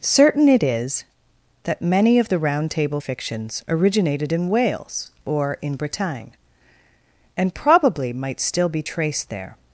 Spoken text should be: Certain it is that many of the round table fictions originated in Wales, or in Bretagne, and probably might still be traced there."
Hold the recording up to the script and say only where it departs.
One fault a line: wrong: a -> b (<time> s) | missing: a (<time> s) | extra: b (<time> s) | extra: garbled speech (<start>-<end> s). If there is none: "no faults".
no faults